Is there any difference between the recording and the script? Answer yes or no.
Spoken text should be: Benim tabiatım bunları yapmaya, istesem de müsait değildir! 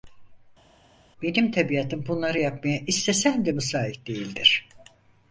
no